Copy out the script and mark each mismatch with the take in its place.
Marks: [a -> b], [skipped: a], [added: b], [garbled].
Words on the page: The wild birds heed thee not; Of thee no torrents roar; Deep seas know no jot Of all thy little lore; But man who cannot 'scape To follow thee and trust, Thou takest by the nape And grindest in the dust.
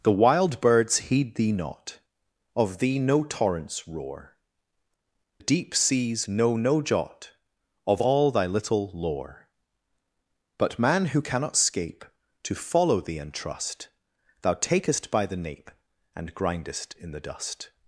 The wild birds heed thee not; Of thee no torrents roar; Deep seas know no jot Of all thy little lore; But man who cannot 'scape To follow thee and trust, Thou takest by the nape And grindest in the dust.